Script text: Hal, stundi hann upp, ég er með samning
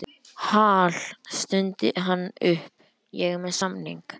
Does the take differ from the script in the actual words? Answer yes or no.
no